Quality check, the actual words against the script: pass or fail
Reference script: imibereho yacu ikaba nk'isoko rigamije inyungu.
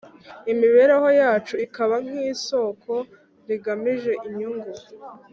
pass